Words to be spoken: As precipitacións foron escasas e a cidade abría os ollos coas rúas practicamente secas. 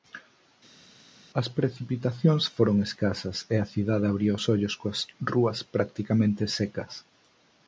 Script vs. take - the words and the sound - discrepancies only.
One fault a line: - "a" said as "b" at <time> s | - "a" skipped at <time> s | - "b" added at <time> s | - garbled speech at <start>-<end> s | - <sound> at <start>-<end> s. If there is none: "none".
none